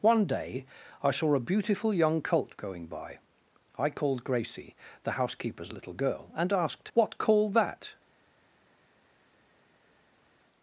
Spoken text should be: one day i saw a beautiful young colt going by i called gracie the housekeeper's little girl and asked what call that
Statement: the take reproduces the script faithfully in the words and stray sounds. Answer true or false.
true